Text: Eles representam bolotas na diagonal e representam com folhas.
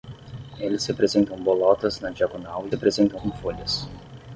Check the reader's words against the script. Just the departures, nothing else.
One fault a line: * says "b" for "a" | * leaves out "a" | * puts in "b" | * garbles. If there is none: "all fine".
all fine